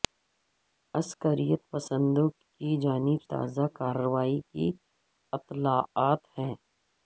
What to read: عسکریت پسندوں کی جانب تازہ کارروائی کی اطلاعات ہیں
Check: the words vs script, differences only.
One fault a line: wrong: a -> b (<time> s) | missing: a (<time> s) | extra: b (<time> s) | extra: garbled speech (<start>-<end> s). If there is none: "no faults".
no faults